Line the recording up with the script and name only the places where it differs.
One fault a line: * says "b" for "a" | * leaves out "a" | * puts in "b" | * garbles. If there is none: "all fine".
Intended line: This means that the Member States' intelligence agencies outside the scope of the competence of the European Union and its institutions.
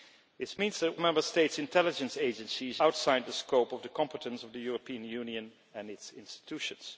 all fine